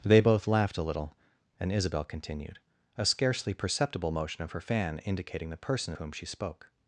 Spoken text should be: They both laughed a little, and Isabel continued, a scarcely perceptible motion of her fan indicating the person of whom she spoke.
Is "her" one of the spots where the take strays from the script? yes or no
no